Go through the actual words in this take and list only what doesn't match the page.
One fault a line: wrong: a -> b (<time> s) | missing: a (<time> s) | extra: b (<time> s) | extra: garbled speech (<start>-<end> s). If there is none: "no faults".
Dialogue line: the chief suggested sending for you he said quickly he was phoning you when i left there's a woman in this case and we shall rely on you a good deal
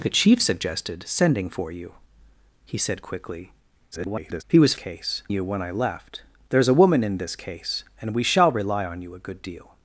extra: garbled speech (3.9-4.4 s)
wrong: phoning -> case (4.7 s)